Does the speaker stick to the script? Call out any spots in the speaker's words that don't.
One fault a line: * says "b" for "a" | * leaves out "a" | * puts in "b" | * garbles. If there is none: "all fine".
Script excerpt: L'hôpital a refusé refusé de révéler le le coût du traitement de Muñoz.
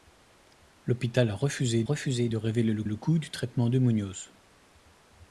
all fine